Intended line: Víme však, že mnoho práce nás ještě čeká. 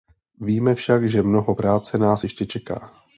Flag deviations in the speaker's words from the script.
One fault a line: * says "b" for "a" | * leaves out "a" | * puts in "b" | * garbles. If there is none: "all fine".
all fine